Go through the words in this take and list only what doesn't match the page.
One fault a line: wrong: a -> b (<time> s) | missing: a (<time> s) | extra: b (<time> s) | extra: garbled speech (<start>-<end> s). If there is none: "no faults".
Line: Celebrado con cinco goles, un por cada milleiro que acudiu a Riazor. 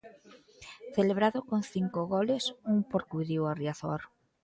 missing: cada milleiro que (3.0 s)